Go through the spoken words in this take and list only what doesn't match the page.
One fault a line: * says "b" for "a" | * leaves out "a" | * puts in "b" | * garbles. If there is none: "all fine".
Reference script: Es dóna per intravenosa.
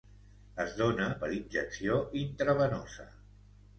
* puts in "injecció"